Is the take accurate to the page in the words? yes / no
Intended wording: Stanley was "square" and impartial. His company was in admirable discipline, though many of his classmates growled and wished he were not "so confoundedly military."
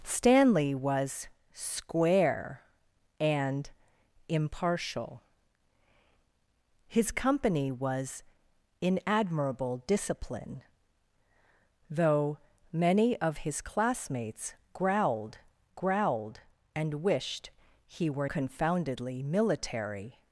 no